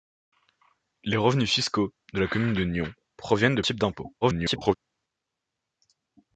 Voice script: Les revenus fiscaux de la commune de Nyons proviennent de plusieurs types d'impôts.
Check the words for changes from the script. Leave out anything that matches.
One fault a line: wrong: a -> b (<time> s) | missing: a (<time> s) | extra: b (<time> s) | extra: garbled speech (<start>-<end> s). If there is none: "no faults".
missing: plusieurs (3.6 s)
extra: garbled speech (4.2-4.7 s)